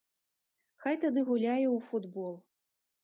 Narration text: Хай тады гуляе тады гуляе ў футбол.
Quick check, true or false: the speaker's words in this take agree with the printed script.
false